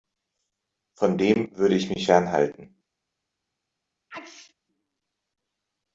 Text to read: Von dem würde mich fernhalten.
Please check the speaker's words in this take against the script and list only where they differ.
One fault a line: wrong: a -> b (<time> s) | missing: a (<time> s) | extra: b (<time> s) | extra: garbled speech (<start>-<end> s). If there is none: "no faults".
extra: ich (1.8 s)